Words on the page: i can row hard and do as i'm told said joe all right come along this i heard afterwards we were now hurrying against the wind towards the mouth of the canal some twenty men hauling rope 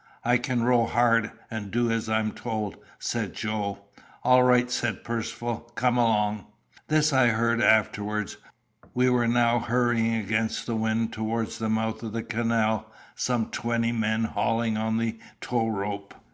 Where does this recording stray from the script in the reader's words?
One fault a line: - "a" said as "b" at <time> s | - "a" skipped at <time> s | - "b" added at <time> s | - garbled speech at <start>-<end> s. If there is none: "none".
- "said percivale" added at 4.7 s
- "on the tow" added at 14.8 s